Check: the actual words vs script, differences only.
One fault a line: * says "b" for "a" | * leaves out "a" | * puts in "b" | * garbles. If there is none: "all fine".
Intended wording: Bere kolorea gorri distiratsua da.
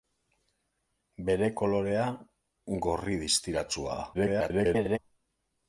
* garbles